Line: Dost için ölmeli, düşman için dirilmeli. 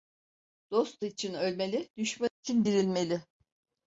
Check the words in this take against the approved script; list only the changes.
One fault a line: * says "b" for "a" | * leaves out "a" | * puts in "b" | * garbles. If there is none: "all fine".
all fine